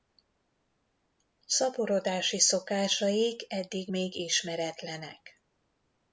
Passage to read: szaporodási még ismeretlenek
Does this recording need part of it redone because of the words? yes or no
yes